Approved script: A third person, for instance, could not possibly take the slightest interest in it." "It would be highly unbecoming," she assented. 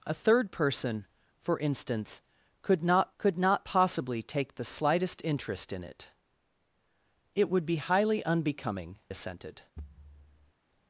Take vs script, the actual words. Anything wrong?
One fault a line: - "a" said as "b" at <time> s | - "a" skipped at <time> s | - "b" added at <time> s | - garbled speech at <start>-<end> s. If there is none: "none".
- "could not" added at 3.2 s
- "she" skipped at 9.0 s